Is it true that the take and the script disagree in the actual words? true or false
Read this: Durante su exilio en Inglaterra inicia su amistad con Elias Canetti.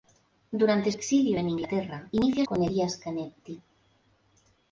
true